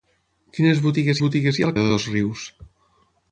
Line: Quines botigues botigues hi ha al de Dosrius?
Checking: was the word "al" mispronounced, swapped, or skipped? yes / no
no